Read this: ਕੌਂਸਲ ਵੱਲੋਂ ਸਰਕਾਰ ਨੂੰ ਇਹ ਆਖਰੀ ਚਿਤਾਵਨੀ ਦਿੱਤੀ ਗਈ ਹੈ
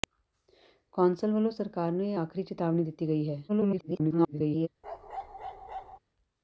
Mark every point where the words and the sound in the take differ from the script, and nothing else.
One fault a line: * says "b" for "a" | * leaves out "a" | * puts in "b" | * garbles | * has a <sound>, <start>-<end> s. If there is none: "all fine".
* garbles
* has a bark, 4.8-6.0 s